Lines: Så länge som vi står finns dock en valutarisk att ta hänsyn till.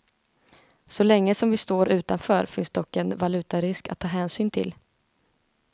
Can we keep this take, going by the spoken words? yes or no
no